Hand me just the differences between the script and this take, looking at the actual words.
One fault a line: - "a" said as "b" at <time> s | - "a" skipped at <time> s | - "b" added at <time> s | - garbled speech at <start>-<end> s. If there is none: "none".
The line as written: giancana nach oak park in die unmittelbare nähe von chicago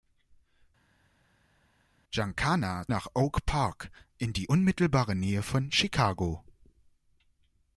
none